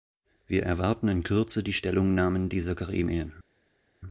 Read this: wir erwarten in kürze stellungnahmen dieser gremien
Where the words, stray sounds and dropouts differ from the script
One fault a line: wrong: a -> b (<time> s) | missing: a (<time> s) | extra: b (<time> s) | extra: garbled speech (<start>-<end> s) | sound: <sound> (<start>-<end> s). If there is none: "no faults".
extra: die (1.6 s)